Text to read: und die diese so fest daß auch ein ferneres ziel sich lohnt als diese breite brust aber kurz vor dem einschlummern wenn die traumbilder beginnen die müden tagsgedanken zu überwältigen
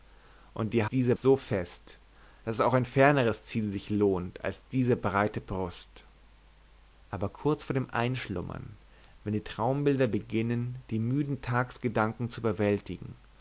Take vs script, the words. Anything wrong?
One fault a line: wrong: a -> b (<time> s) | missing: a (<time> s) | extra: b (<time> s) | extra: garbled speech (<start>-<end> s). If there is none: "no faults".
no faults